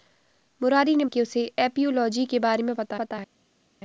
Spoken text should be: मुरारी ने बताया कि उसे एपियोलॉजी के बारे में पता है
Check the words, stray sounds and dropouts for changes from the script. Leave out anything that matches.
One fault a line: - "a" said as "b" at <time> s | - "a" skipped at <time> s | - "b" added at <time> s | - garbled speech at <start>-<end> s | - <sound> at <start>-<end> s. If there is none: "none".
- "बताया" skipped at 1.1 s
- "पता" added at 3.0 s